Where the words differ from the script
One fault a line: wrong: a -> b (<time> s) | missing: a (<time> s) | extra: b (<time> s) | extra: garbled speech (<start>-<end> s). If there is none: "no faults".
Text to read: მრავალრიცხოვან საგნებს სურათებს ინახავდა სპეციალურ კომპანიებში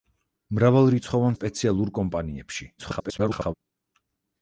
missing: საგნებს სურათებს ინახავდა (1.4 s)
extra: garbled speech (2.8-3.5 s)